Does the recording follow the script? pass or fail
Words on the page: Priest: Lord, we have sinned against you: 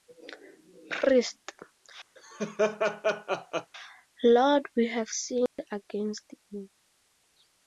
pass